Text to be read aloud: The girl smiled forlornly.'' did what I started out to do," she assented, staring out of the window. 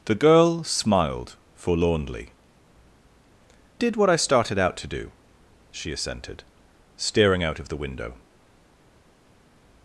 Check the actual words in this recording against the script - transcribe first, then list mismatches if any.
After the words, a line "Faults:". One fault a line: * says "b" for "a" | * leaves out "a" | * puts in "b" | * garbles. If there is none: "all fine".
The girl smiled forlornly.'' did what I started out to do," she assented, staring out of the window.
Faults:
all fine